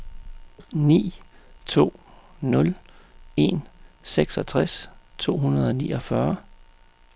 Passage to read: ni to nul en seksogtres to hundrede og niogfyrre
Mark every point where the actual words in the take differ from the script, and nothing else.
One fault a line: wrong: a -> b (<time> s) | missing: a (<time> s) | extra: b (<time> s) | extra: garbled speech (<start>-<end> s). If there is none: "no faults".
no faults